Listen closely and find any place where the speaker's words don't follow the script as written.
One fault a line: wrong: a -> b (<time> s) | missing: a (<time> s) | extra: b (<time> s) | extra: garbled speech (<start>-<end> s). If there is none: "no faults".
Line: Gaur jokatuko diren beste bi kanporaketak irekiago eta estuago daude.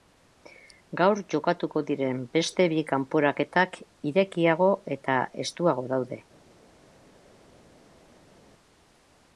no faults